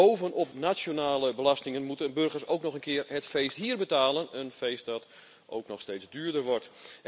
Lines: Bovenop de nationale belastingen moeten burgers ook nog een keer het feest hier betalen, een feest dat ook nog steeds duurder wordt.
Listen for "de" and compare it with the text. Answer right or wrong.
wrong